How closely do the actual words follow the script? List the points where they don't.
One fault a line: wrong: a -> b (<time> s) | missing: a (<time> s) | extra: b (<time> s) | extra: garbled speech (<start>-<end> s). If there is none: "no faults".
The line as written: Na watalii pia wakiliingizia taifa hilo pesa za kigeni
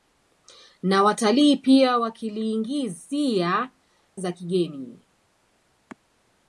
missing: taifa hilo pesa (3.7 s)